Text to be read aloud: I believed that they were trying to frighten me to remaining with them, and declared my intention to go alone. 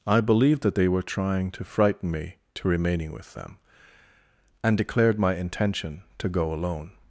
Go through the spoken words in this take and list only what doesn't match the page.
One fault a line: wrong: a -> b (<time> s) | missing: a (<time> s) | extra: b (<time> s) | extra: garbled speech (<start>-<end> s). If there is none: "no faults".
no faults